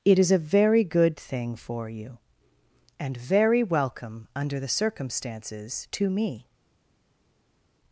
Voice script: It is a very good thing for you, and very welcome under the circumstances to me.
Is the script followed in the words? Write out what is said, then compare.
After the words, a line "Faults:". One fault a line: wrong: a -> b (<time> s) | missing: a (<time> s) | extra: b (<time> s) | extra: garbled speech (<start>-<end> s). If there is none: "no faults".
It is a very good thing for you, and very welcome under the circumstances to me.
Faults:
no faults